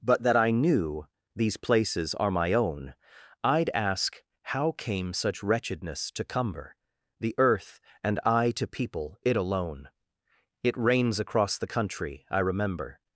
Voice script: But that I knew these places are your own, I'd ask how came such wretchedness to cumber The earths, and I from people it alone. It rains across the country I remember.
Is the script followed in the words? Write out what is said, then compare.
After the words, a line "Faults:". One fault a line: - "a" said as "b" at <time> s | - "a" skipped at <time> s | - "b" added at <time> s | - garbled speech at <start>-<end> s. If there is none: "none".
But that I knew these places are my own, I'd ask how came such wretchedness to cumber The earth, and I to people it alone. It rains across the country I remember.
Faults:
- "your" said as "my" at 2.3 s
- "earths" said as "earth" at 7.4 s
- "from" said as "to" at 8.5 s